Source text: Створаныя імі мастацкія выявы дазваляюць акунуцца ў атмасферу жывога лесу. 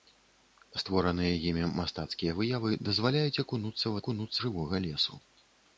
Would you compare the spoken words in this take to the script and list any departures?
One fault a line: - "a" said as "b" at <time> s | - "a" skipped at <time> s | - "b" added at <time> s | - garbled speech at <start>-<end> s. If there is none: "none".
- "атмасферу" said as "акунуцца" at 4.0 s